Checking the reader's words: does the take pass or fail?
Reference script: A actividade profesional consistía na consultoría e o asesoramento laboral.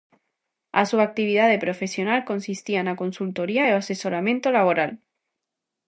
fail